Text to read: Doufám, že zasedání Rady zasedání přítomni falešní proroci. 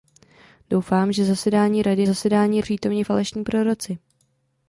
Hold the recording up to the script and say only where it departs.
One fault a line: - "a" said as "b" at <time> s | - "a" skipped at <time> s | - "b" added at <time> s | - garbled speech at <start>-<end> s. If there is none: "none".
none